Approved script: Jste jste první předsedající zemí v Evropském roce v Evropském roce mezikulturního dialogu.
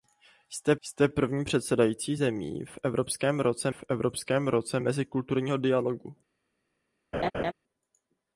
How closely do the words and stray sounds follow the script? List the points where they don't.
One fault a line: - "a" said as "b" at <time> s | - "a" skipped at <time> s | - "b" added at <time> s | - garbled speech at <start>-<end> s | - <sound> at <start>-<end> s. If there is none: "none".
- laugh at 7.1-7.5 s